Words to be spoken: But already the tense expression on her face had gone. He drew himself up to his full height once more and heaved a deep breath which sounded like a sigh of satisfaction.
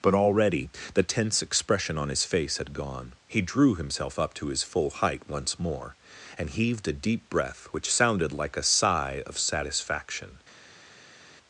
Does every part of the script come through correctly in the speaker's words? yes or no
no